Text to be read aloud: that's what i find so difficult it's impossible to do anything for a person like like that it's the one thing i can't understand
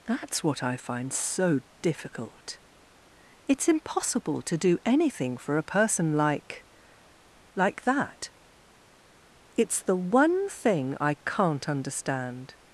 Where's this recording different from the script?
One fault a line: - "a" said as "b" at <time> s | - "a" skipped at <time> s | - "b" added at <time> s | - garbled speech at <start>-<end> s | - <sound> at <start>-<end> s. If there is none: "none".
none